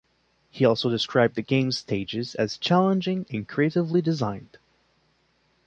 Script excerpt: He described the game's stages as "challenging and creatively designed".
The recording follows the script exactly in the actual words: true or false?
false